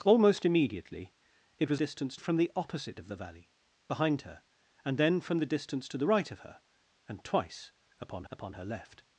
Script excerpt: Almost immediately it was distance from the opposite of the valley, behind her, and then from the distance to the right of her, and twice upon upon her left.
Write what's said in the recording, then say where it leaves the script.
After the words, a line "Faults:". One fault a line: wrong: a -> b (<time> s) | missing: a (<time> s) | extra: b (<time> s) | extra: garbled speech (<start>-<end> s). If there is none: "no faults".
Almost immediately it was distance from the opposite of the valley, behind her, and then from the distance to the right of her, and twice upon upon her left.
Faults:
no faults